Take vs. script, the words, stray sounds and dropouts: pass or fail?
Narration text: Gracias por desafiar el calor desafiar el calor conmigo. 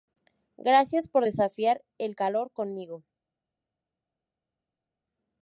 fail